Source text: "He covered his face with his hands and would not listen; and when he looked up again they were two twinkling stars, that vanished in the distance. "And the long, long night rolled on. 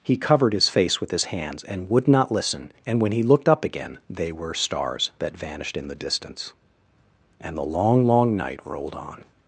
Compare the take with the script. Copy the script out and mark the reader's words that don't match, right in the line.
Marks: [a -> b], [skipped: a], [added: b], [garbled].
"He covered his face with his hands and would not listen; and when he looked up again they were [skipped: two twinkling] stars, that vanished in the distance. "And the long, long night rolled on.